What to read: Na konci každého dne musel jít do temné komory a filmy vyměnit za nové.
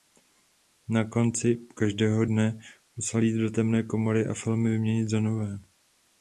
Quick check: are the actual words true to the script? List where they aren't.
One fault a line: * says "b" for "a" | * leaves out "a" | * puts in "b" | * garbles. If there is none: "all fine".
all fine